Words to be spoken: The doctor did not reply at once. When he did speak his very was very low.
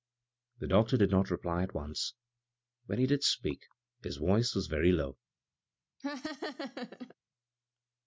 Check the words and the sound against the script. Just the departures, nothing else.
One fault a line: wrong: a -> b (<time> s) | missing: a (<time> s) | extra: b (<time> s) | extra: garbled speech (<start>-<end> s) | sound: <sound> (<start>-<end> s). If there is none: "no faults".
wrong: very -> voice (4.2 s)
sound: laugh (6.0-7.1 s)